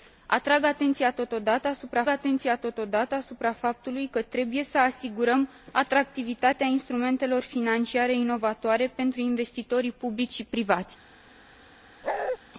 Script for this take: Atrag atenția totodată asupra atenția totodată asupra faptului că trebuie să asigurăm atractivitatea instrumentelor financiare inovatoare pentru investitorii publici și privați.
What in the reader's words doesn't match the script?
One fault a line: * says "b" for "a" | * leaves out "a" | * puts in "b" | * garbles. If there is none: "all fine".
all fine